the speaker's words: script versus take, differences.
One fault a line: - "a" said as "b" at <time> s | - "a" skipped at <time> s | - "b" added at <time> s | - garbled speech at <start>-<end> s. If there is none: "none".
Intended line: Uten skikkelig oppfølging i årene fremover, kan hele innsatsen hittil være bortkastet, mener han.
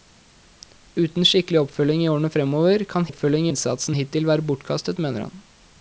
- "hele" said as "oppfølging" at 3.1 s